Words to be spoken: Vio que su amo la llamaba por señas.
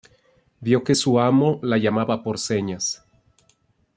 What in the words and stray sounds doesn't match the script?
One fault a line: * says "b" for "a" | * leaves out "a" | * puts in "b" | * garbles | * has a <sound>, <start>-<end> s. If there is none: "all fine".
all fine